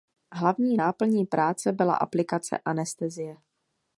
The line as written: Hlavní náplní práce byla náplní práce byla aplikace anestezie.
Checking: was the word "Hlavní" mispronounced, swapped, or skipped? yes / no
no